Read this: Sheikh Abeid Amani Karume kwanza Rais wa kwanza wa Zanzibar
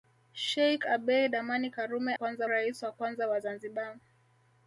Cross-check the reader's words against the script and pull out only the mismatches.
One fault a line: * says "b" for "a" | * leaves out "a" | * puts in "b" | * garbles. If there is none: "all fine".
all fine